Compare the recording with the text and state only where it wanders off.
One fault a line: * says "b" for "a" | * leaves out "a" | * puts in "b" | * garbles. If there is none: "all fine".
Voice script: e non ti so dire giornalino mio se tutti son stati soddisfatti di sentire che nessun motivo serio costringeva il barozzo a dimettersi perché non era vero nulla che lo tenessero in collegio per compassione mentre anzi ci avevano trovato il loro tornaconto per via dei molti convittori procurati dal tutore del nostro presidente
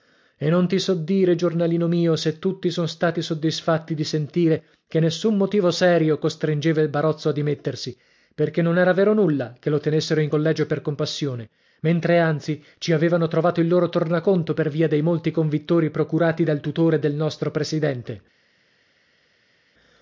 all fine